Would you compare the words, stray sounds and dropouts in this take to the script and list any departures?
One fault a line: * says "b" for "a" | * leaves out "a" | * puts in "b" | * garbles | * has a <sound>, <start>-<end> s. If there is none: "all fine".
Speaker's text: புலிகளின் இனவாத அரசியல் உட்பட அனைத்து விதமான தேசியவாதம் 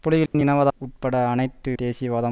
* has a dropout, 0.3-0.3 s
* leaves out "அரசியல்"
* leaves out "விதமான"